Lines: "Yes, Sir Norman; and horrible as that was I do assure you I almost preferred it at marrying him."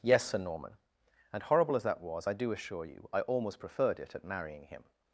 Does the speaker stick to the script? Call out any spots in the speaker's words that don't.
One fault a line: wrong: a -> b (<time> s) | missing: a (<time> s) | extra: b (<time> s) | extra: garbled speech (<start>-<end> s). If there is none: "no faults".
no faults